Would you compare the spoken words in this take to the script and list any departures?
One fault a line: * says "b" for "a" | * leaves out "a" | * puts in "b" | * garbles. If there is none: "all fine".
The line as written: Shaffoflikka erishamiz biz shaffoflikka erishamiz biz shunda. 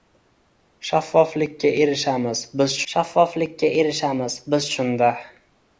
all fine